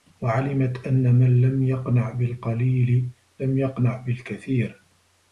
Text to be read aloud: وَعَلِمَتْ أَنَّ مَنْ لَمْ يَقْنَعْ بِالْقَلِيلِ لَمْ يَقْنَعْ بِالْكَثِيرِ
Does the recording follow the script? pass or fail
pass